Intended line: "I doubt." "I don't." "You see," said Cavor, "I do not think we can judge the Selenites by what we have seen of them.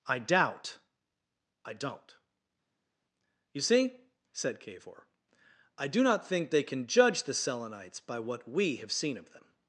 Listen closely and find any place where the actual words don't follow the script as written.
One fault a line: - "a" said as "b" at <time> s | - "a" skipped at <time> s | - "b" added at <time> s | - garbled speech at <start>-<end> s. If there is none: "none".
- "we" said as "they" at 6.5 s